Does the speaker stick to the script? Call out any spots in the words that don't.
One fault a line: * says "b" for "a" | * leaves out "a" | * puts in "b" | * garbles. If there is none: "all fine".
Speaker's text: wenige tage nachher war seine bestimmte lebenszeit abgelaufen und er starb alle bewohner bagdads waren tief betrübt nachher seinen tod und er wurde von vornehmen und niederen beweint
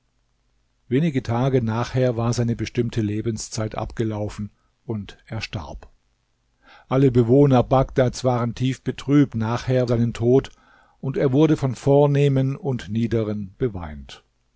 all fine